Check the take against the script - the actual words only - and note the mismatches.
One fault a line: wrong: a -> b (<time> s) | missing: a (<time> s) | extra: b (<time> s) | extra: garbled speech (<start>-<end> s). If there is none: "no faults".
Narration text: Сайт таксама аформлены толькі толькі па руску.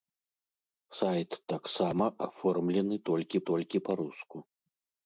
no faults